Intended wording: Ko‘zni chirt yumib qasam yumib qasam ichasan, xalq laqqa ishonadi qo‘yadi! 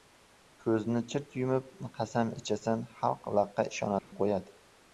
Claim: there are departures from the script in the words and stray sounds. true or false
true